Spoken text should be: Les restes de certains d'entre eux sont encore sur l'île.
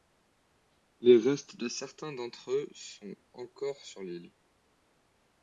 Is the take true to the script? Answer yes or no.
yes